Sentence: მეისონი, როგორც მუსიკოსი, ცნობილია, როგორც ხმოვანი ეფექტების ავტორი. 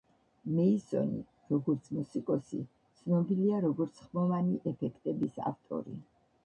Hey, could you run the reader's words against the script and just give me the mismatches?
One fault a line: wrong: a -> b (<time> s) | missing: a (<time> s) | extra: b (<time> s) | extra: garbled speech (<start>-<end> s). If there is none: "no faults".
no faults